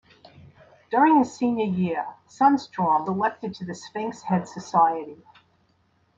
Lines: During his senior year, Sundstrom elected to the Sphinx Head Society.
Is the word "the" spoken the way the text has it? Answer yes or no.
yes